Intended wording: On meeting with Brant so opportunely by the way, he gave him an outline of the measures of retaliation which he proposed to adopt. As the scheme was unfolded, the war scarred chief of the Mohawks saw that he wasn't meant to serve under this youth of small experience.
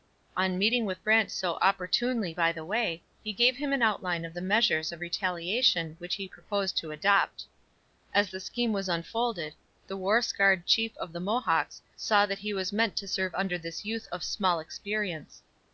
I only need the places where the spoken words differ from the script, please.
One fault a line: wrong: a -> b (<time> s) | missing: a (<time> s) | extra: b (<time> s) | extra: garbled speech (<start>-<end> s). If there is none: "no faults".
wrong: wasn't -> was (12.5 s)